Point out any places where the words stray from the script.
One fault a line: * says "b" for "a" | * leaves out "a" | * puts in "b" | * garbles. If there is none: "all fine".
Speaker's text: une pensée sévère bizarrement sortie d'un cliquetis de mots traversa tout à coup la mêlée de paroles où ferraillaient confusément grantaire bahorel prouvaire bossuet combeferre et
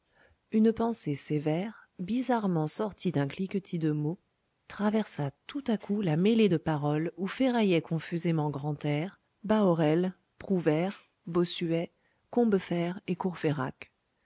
all fine